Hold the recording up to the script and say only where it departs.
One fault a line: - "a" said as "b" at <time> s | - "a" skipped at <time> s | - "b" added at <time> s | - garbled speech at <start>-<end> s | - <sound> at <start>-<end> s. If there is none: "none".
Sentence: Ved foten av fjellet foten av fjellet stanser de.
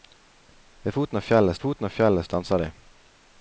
none